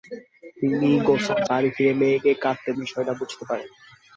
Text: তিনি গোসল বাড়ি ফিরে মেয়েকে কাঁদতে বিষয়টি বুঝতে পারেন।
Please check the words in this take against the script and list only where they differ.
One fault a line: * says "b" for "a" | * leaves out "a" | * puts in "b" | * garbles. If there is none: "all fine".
all fine